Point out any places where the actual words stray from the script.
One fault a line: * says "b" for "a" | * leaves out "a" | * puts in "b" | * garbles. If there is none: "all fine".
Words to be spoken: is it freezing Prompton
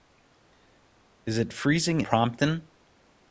all fine